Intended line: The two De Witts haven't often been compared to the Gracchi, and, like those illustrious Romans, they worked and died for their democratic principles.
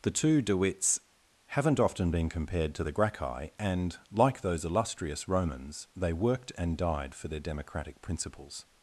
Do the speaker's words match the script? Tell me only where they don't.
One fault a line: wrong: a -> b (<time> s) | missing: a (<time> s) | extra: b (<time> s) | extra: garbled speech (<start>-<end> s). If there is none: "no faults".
no faults